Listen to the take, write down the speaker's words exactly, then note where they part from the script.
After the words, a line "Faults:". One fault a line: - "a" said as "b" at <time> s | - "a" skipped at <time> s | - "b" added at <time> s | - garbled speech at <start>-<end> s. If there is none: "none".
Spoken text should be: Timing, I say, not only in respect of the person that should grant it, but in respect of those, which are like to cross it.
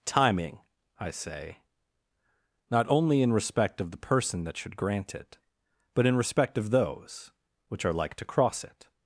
Timing, I say, not only in respect of the person that should grant it, but in respect of those, which are like to cross it.
Faults:
none